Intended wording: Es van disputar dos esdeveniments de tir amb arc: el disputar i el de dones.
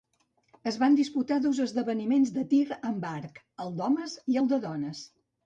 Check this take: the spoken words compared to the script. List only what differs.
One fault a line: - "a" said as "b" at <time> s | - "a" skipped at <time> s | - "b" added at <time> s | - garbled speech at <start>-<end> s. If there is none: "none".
- "disputar" said as "d'homes" at 3.8 s